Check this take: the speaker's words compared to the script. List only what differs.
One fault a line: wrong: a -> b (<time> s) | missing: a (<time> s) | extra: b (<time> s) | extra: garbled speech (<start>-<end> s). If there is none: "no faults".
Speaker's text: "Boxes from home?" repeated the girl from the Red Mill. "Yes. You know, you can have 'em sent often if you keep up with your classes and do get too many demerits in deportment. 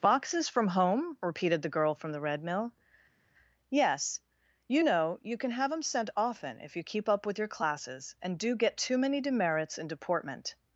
no faults